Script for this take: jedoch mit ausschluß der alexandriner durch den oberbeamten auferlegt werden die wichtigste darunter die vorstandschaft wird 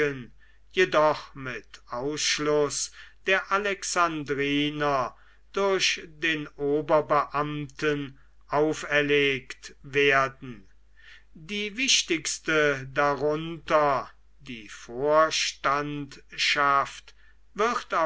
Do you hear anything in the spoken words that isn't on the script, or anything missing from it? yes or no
no